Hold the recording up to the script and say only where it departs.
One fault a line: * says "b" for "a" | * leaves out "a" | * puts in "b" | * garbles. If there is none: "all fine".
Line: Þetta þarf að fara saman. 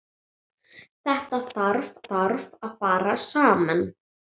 * puts in "þarf"